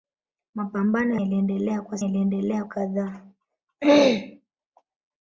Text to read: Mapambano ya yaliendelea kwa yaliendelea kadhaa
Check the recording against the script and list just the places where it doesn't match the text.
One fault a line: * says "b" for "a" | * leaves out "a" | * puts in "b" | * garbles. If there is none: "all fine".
all fine